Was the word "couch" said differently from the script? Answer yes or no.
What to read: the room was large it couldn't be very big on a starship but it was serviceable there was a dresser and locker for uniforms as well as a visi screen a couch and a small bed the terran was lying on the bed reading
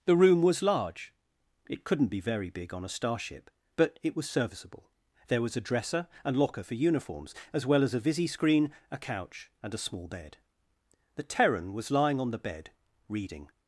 no